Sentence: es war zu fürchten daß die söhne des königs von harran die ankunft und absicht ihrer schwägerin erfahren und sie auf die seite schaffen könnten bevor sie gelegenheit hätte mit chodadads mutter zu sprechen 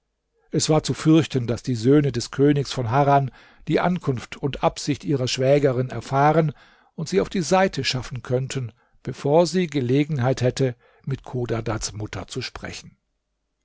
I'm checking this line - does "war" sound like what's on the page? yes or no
yes